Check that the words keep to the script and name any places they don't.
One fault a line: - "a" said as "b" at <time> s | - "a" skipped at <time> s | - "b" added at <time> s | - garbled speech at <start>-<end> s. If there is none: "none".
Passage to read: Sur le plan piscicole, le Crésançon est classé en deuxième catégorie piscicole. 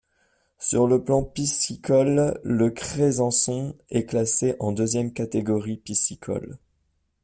none